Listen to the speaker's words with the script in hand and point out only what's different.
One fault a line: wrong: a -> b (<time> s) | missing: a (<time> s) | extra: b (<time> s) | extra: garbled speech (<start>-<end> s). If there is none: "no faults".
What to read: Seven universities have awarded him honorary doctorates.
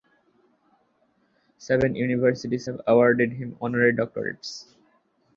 no faults